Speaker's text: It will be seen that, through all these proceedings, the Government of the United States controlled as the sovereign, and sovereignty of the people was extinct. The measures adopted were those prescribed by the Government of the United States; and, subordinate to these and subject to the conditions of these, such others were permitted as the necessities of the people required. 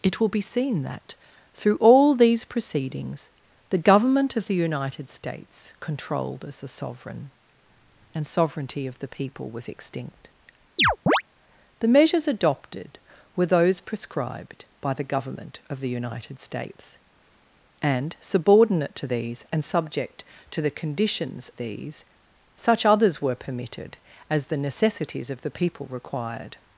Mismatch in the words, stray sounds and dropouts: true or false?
true